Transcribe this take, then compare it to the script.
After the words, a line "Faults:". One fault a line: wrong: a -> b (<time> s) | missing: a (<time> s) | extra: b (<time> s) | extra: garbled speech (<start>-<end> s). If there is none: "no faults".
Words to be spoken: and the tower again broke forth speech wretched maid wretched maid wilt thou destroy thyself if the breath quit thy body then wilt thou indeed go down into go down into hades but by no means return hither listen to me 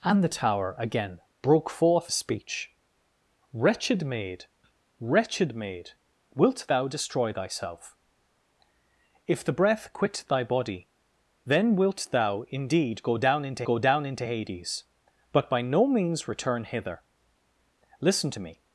and the tower again broke forth speech wretched maid wretched maid wilt thou destroy thyself if the breath quit thy body then wilt thou indeed go down into go down into hades but by no means return hither listen to me
Faults:
no faults